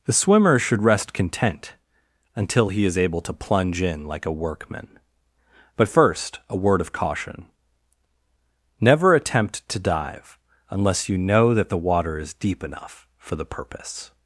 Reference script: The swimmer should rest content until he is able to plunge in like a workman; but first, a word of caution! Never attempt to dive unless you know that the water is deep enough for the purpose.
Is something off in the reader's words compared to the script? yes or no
no